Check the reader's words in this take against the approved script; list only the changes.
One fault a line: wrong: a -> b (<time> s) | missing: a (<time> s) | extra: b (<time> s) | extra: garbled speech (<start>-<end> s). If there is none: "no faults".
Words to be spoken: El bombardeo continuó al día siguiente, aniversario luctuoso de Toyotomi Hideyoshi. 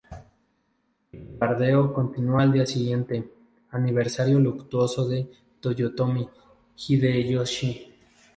no faults